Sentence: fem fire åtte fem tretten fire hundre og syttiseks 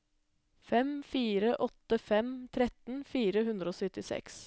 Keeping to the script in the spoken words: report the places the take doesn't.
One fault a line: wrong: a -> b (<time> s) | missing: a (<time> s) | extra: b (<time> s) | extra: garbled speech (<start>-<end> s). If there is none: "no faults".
no faults